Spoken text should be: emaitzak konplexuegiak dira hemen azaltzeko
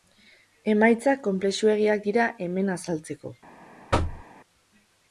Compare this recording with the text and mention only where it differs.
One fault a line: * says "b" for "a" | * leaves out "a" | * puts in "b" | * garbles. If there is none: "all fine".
all fine